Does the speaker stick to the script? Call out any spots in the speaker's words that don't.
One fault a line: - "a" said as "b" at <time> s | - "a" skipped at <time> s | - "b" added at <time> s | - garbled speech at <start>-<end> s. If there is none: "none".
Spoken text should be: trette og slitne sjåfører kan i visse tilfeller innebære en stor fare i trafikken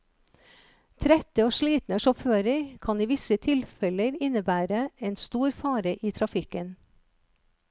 none